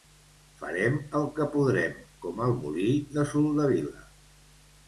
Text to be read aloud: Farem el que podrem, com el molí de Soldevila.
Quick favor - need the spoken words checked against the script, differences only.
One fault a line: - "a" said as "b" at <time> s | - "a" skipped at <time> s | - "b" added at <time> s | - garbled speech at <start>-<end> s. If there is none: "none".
none